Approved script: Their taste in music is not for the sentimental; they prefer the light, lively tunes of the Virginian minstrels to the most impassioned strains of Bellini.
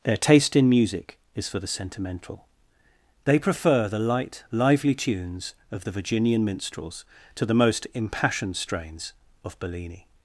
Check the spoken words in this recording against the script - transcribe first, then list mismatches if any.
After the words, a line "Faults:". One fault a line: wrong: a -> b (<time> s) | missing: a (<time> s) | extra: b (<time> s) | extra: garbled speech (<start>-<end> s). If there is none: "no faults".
Their taste in music is for the sentimental; they prefer the light, lively tunes of the Virginian minstrels to the most impassioned strains of Bellini.
Faults:
missing: not (1.5 s)